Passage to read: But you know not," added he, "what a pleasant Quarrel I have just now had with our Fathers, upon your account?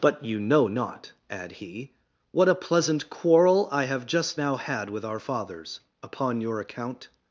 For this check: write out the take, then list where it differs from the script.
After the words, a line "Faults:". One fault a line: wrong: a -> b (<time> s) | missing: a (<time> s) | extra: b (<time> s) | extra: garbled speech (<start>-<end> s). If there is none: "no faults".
But you know not," add he, "what a pleasant Quarrel I have just now had with our Fathers, upon your account?
Faults:
wrong: added -> add (1.3 s)